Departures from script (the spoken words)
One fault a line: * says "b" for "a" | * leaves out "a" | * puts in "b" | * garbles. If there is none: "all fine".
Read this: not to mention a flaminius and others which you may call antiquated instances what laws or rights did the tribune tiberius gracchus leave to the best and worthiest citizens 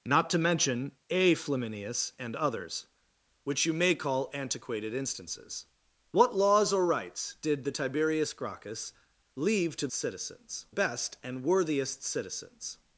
* leaves out "tribune"
* says "citizens" for "the"